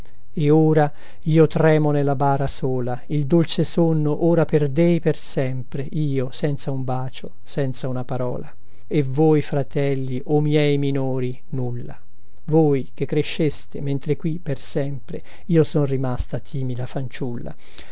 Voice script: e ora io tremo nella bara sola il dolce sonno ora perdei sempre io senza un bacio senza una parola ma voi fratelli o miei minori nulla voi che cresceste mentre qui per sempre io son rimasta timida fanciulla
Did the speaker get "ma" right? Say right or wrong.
wrong